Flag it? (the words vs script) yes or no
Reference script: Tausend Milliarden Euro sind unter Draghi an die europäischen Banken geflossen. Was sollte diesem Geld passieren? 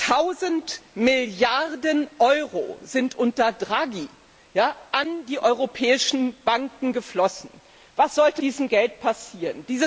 no